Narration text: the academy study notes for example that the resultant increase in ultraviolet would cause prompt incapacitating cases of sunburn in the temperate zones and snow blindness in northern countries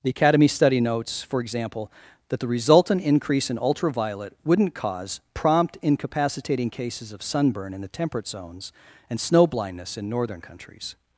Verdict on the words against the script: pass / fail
fail